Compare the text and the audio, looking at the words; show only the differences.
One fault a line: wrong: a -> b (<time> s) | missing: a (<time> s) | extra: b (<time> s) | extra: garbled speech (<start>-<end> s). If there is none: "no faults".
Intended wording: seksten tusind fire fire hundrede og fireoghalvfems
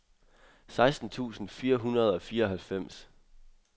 missing: fire (1.8 s)